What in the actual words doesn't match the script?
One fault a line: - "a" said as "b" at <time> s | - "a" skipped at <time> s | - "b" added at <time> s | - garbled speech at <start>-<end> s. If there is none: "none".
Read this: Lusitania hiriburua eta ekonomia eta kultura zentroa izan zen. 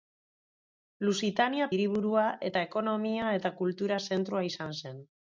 none